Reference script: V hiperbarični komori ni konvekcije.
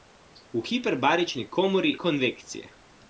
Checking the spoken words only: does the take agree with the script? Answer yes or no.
no